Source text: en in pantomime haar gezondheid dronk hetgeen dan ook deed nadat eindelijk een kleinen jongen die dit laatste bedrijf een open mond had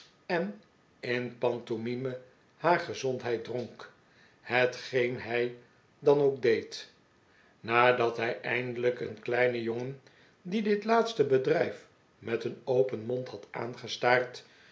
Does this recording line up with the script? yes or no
no